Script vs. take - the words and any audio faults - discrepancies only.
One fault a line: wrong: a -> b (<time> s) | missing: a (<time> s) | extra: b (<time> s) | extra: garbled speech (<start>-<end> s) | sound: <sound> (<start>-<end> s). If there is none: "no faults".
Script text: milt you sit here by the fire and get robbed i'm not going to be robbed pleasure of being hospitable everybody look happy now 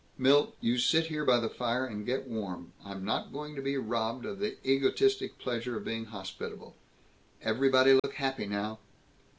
wrong: robbed -> warm (2.2 s)
extra: of the egotistic (4.2 s)
sound: dropout (8.0-8.0 s)